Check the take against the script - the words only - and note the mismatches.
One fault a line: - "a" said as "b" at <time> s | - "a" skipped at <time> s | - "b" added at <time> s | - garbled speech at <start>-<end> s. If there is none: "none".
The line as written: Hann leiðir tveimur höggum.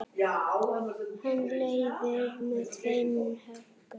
- "með" added at 2.5 s